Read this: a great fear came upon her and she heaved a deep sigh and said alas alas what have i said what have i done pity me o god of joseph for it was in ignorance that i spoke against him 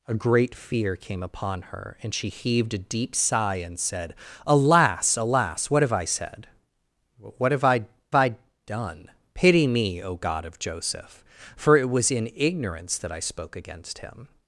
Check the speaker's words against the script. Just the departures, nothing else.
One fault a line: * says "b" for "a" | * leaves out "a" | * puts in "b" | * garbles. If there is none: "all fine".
* puts in "i"